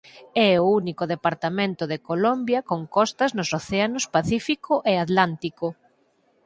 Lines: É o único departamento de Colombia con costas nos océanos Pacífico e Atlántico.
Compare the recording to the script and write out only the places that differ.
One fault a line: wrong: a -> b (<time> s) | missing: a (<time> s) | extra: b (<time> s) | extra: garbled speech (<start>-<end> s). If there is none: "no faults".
no faults